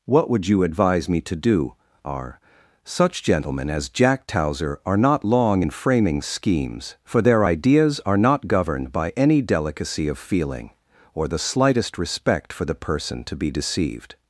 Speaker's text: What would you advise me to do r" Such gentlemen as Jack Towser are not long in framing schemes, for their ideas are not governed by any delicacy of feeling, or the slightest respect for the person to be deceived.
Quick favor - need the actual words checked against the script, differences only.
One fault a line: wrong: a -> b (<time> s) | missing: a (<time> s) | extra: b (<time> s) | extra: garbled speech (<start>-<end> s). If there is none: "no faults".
no faults